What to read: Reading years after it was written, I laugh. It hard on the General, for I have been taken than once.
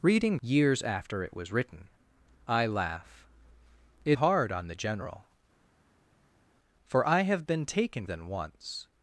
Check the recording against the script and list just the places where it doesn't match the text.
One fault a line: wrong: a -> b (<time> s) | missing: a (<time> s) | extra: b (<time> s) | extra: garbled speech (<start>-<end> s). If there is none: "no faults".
no faults